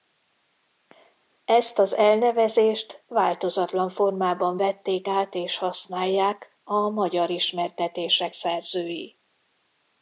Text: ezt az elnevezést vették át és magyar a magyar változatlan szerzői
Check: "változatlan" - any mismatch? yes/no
yes